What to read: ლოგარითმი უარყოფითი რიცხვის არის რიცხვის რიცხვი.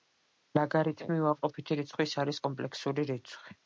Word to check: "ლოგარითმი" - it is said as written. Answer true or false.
true